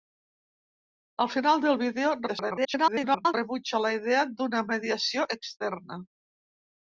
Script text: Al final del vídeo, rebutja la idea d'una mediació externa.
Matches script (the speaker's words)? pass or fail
fail